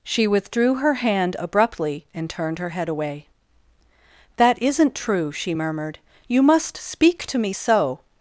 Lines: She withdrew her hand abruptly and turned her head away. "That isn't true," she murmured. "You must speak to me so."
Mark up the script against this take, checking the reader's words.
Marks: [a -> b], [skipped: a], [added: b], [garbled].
She withdrew her hand abruptly and turned her head away. "That isn't true," she murmured. "You must speak to me so."